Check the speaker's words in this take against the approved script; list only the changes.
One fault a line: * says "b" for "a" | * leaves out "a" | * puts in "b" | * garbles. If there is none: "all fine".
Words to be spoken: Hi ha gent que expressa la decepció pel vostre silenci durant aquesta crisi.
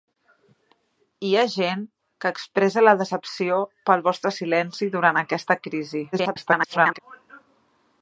* garbles